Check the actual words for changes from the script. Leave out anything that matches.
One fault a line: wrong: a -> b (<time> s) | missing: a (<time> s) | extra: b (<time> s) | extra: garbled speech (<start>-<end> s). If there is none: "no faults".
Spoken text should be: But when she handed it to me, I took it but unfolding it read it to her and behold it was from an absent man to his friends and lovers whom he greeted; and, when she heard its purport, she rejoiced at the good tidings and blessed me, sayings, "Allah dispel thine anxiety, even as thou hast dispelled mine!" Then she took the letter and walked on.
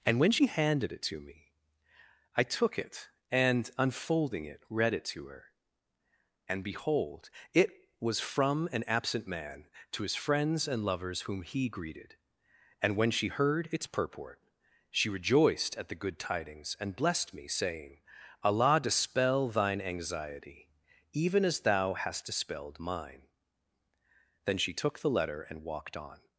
wrong: But -> And (0.1 s)
wrong: but -> and (3.3 s)
wrong: sayings -> saying (17.5 s)